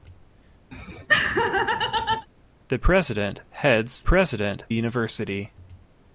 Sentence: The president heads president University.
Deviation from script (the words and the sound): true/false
true